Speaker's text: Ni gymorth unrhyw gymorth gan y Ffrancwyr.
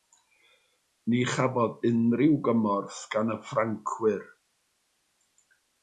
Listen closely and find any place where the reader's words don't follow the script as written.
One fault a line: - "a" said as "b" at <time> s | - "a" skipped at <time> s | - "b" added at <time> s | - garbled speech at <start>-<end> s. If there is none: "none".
- "gymorth" said as "chafodd" at 1.3 s